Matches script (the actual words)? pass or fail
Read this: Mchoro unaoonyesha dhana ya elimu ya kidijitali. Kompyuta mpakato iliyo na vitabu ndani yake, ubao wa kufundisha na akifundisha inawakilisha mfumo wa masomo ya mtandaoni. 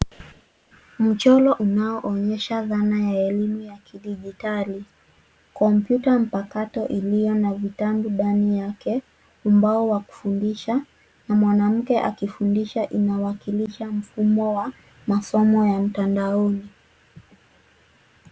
fail